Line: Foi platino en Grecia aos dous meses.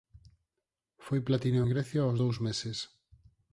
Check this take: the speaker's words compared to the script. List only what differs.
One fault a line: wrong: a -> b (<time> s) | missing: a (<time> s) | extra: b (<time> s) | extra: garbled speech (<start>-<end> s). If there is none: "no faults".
no faults